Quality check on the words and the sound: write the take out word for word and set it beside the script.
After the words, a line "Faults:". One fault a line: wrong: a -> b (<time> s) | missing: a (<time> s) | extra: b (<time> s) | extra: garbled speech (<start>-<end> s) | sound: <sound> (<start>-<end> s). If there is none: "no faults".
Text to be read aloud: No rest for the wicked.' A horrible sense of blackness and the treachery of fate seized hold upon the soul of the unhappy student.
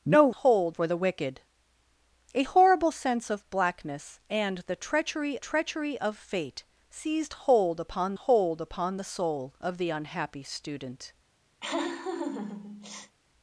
No hold for the wicked.' A horrible sense of blackness and the treachery treachery of fate seized hold upon hold upon the soul of the unhappy student.
Faults:
wrong: rest -> hold (0.3 s)
extra: treachery (5.4 s)
extra: hold upon (8.1 s)
sound: laugh (11.6-13.1 s)